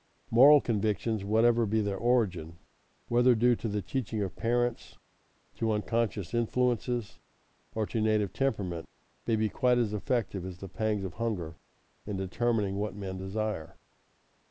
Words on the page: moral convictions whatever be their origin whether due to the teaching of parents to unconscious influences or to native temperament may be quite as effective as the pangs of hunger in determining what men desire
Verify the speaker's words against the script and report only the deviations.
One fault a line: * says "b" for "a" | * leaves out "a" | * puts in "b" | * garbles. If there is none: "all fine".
all fine